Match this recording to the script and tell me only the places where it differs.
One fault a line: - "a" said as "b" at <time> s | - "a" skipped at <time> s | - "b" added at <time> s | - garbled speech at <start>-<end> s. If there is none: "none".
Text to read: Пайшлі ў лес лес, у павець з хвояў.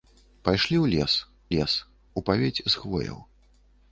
none